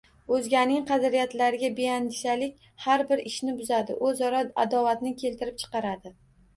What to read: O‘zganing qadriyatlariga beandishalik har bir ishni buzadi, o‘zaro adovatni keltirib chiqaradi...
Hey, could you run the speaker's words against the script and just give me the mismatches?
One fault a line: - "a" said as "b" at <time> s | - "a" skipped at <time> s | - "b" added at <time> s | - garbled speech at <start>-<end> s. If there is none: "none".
none